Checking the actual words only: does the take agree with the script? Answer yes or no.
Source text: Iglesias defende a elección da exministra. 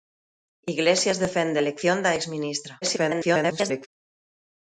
no